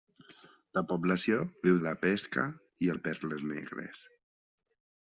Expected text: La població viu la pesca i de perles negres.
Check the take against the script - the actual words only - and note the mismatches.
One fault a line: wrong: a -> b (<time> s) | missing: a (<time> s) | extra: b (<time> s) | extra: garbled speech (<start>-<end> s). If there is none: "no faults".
no faults